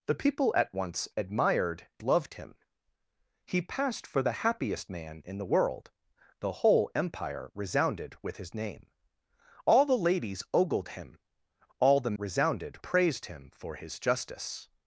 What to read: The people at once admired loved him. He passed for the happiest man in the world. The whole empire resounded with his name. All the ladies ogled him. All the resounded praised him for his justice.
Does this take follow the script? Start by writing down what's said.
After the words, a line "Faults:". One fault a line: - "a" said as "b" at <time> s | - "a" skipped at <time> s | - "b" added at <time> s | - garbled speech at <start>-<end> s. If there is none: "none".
The people at once admired loved him. He passed for the happiest man in the world. The whole empire resounded with his name. All the ladies ogled him. All the resounded praised him for his justice.
Faults:
none